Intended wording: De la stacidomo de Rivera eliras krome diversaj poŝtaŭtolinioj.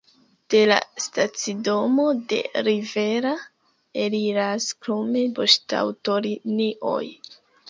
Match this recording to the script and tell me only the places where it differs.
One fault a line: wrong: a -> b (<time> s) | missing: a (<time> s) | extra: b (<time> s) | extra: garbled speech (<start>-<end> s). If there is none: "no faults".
missing: diversaj (5.2 s)